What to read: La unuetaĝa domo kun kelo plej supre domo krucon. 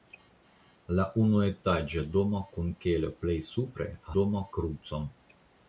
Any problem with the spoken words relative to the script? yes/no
no